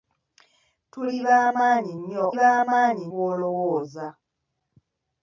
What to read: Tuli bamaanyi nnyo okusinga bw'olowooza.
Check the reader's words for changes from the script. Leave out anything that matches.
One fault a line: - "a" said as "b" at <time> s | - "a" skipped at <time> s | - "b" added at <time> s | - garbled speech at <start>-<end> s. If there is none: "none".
- "okusinga" said as "bamaanyi" at 2.4 s